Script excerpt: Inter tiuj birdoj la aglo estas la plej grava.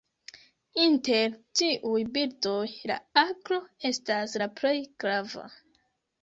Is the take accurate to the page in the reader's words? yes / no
yes